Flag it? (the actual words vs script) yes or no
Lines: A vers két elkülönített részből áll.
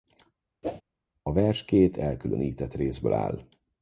no